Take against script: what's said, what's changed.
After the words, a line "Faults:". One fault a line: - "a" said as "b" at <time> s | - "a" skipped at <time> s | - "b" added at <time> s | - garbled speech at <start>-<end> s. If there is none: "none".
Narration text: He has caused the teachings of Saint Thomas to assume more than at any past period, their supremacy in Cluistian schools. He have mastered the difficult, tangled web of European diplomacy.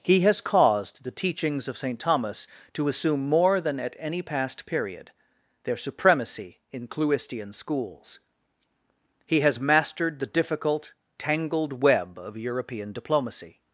He has caused the teachings of Saint Thomas to assume more than at any past period, their supremacy in Cluistian schools. He has mastered the difficult, tangled web of European diplomacy.
Faults:
- "have" said as "has" at 9.4 s